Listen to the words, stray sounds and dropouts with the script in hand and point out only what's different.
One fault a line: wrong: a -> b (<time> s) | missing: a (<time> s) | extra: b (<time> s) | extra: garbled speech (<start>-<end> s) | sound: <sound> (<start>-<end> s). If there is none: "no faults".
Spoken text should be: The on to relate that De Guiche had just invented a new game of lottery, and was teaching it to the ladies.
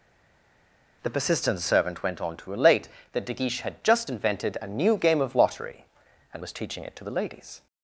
extra: persistent servant went (1.1 s)